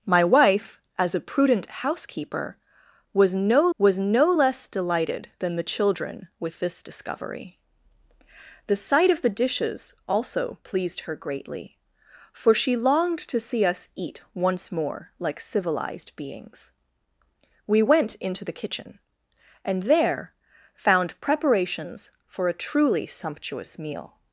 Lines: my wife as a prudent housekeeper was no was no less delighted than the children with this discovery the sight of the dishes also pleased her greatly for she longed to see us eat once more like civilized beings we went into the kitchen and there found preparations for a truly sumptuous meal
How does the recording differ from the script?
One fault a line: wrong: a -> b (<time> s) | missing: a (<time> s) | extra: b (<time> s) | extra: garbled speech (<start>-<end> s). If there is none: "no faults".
no faults